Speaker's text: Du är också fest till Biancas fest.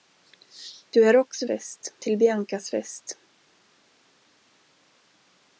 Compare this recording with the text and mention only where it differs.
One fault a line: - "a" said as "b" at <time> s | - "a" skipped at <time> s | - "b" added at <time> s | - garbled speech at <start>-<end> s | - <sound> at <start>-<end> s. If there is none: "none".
none